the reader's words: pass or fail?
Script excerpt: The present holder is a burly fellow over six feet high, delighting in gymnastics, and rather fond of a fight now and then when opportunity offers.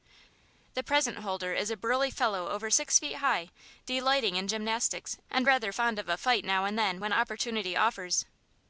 pass